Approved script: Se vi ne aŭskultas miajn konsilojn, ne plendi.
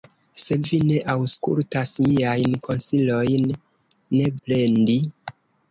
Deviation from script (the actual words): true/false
false